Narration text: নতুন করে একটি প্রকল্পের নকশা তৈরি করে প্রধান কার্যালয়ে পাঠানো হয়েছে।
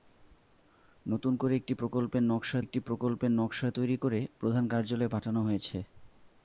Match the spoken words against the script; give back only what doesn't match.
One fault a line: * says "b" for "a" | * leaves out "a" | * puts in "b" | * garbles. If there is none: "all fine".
* puts in "একটি প্রকল্পের নকশা"